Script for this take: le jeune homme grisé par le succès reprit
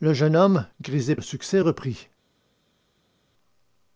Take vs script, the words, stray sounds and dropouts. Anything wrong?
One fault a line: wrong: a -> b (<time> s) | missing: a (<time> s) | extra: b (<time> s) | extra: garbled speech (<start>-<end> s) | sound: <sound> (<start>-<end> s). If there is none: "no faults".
missing: par (1.1 s)